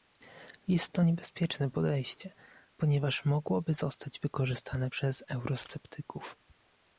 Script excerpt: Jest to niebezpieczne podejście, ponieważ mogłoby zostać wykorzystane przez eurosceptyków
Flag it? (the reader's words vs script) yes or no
no